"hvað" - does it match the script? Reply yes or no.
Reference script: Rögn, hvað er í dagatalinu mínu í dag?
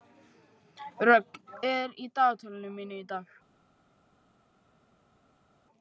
no